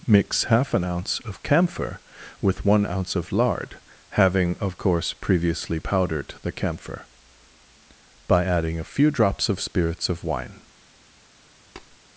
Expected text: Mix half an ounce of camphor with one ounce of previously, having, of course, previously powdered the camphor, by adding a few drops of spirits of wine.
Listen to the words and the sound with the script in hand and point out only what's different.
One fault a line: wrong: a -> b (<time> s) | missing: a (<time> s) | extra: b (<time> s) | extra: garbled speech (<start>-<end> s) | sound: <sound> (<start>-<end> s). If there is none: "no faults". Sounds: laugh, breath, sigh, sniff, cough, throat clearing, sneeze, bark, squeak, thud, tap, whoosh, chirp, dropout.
wrong: previously -> lard (3.3 s)
sound: tap (11.8-12.0 s)